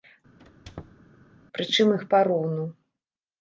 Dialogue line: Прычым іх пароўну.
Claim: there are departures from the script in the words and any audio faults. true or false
true